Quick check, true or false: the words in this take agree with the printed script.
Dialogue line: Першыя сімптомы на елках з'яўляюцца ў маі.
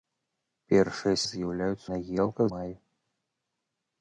false